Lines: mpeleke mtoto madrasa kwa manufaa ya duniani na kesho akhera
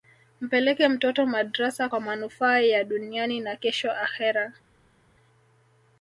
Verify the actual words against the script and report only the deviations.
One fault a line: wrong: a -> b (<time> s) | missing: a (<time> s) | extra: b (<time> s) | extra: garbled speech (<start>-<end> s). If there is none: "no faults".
no faults